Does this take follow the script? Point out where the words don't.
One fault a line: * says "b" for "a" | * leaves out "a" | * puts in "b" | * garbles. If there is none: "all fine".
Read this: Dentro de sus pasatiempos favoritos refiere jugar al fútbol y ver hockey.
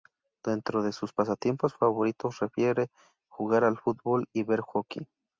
all fine